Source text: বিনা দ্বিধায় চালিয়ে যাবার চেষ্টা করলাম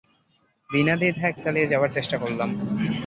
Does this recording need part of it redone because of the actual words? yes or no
no